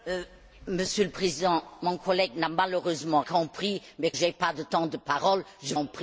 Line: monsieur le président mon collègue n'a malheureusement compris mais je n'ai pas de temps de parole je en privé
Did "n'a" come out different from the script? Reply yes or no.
no